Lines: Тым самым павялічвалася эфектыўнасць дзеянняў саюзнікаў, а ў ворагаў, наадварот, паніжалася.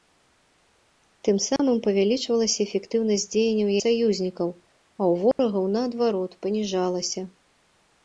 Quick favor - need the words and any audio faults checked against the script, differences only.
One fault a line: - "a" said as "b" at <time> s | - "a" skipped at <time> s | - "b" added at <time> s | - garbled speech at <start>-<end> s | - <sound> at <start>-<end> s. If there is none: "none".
- dropout at 1.6-1.6 s
- dropout at 5.3-5.4 s